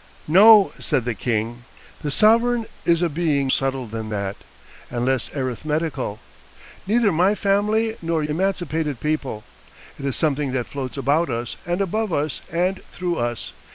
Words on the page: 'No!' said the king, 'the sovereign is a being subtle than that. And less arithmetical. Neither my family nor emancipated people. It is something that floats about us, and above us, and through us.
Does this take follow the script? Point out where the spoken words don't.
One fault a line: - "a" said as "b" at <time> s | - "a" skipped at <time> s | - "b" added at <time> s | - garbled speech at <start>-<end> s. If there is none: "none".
none